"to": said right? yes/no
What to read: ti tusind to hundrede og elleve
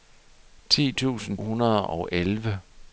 no